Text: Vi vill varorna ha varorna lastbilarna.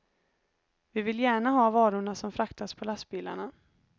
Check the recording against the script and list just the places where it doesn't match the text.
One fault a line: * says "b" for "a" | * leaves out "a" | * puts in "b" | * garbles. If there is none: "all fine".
* says "gärna" for "varorna"
* puts in "som fraktas på"